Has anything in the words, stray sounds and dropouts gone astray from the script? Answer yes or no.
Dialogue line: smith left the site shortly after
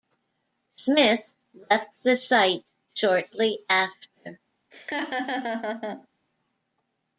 yes